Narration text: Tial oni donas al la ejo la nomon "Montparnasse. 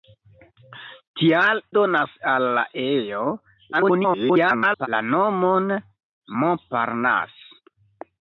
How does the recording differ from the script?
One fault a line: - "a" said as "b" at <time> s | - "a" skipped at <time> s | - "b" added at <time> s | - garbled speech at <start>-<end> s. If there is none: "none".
- "oni" skipped at 1.6 s
- garbled speech at 3.7-4.9 s